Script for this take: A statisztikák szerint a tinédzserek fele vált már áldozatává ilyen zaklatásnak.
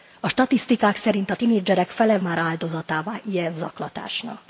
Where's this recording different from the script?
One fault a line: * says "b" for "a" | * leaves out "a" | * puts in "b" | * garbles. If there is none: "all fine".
* leaves out "vált"